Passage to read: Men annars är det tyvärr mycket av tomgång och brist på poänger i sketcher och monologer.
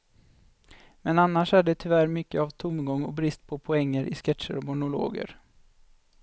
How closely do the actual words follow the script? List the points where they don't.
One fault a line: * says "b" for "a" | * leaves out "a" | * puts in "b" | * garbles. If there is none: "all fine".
all fine